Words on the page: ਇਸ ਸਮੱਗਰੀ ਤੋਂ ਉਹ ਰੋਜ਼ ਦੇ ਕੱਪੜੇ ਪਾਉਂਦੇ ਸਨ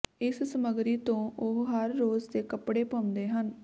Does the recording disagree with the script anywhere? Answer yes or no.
yes